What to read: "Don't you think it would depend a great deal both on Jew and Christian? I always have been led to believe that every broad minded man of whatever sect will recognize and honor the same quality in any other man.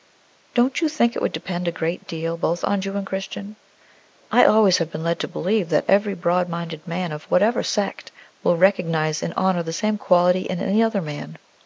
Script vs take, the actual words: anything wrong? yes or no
no